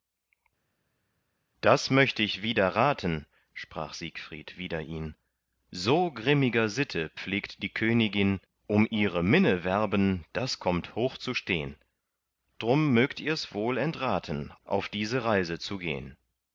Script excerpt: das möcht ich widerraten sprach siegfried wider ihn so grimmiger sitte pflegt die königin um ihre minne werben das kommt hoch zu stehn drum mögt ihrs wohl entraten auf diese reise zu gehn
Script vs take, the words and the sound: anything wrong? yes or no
no